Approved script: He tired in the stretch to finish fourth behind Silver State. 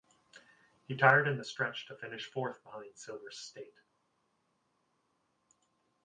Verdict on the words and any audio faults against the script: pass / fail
pass